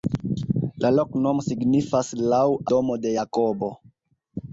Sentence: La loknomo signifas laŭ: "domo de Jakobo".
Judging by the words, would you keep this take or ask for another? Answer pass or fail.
pass